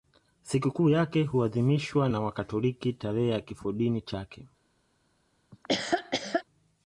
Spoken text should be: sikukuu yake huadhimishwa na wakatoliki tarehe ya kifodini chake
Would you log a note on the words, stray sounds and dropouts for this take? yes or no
yes